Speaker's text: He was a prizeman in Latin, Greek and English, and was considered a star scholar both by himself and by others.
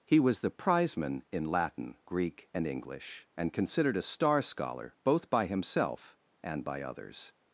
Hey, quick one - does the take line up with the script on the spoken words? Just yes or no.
no